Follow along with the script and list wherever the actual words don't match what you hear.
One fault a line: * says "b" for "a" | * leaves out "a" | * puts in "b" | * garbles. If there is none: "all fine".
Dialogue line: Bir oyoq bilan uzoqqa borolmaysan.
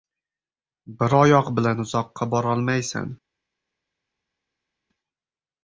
all fine